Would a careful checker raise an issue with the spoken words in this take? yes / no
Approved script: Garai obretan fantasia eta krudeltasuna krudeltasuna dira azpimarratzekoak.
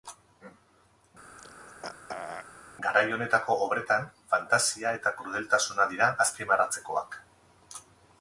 yes